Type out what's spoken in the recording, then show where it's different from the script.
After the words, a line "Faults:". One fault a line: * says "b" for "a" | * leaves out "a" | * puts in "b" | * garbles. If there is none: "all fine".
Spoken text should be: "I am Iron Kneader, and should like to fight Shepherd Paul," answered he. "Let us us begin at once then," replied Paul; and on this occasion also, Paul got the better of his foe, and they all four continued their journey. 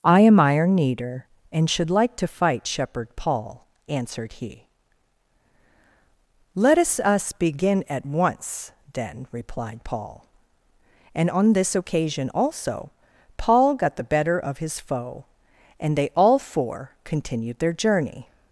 "I am Iron Kneader, and should like to fight Shepherd Paul," answered he. "Let us us begin at once then," replied Paul; and on this occasion also, Paul got the better of his foe, and they all four continued their journey.
Faults:
all fine